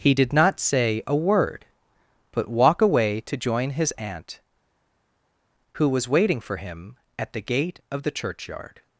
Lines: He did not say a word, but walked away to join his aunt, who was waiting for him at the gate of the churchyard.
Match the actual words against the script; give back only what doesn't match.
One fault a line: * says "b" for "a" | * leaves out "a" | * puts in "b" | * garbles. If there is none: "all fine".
* says "walk" for "walked"